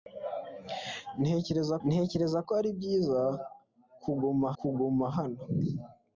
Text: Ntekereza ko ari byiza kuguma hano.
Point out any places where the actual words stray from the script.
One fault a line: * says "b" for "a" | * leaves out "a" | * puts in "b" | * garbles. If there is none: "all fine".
* puts in "ntekereza"
* puts in "kuguma"